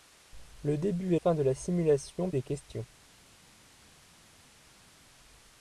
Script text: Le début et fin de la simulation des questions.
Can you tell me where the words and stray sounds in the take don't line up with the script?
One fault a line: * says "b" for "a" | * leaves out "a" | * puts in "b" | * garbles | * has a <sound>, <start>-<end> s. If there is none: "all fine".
all fine